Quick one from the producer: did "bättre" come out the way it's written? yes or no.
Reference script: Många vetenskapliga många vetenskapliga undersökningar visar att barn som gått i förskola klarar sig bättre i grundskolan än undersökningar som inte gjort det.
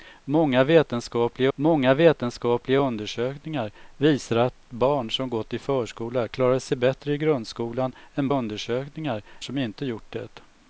yes